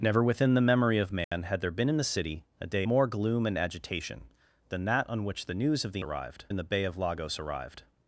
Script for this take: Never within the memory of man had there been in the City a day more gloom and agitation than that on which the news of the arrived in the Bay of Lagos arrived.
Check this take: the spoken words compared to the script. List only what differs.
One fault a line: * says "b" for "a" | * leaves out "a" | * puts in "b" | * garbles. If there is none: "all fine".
all fine